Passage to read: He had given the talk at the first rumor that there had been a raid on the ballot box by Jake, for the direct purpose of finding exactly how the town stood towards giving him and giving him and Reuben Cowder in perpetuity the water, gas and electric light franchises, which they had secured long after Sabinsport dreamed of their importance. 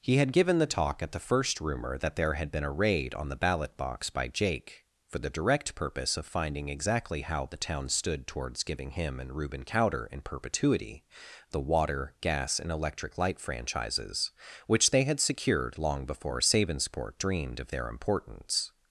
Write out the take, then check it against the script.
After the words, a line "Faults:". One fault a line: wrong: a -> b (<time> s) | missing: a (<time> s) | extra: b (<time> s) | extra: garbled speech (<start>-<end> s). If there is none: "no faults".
He had given the talk at the first rumor that there had been a raid on the ballot box by Jake, for the direct purpose of finding exactly how the town stood towards giving him and Reuben Cowder in perpetuity the water, gas and electric light franchises, which they had secured long before Sabinsport dreamed of their importance.
Faults:
missing: giving him and (9.3 s)
wrong: after -> before (16.1 s)